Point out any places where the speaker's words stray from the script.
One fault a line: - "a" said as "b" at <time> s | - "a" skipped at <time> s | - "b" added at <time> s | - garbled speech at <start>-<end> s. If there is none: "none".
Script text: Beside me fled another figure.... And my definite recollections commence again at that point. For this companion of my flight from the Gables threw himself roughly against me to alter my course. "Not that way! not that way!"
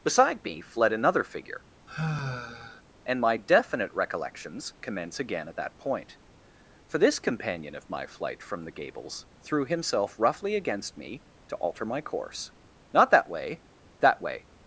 - "not" skipped at 13.6 s